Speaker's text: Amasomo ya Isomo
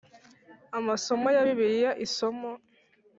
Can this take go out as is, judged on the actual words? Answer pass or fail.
fail